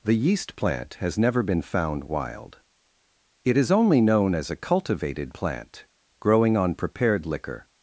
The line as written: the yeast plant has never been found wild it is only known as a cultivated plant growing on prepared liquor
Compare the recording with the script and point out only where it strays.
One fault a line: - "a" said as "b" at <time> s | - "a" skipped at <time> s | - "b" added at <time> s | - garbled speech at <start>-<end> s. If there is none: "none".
none